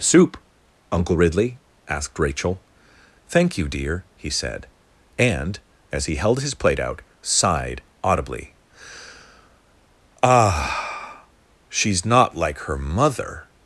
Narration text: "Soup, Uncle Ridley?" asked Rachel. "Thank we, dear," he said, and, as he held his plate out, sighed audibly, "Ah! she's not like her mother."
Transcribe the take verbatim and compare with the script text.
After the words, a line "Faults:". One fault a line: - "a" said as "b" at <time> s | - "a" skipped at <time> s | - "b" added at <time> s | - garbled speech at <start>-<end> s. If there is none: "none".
"Soup, Uncle Ridley?" asked Rachel. "Thank you, dear," he said, and, as he held his plate out, sighed audibly, "Ah! she's not like her mother."
Faults:
- "we" said as "you" at 3.6 s